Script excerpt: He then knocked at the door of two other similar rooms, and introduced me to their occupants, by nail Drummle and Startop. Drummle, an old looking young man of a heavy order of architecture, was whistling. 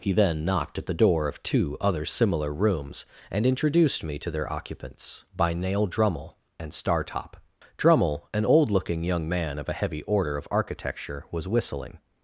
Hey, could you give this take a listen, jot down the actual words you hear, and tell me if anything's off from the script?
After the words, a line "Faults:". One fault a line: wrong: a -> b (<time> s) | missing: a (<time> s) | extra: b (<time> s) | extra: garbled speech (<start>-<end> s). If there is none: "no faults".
He then knocked at the door of two other similar rooms, and introduced me to their occupants, by nail Drummle and Startop. Drummle, an old looking young man of a heavy order of architecture, was whistling.
Faults:
no faults